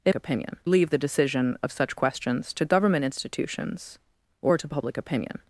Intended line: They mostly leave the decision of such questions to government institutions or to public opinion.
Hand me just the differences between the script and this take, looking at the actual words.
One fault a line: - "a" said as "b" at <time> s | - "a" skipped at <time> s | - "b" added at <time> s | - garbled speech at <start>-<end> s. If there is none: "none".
- "mostly" said as "opinion" at 0.1 s